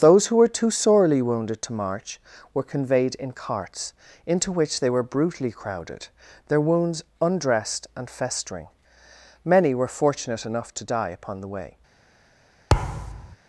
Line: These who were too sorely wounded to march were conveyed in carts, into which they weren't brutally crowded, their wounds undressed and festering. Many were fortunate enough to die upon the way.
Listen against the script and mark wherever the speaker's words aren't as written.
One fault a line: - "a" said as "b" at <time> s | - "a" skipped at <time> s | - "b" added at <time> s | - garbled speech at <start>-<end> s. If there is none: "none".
- "These" said as "Those" at 0.0 s
- "weren't" said as "were" at 4.9 s